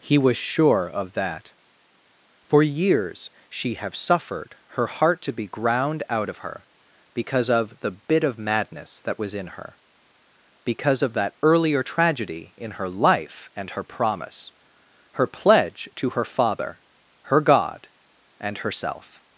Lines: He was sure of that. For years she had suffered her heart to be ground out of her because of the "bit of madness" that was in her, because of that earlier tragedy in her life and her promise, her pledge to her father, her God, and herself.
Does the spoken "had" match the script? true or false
false